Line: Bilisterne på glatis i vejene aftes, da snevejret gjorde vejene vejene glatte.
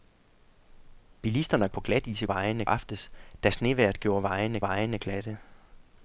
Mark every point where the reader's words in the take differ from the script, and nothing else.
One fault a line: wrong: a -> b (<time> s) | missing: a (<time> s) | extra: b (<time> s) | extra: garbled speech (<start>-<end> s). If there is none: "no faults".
no faults